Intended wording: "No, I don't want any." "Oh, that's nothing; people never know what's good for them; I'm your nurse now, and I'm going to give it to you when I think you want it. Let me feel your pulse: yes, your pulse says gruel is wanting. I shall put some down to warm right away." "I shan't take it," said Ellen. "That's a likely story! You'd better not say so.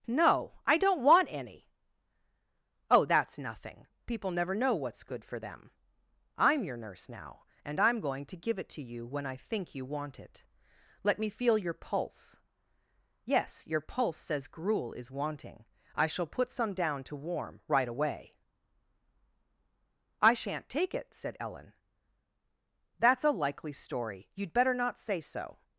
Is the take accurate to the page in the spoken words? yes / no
yes